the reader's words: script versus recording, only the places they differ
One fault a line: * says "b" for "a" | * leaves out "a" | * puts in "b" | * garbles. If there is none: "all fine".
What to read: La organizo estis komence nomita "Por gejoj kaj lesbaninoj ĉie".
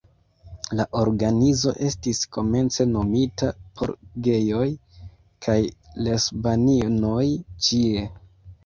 all fine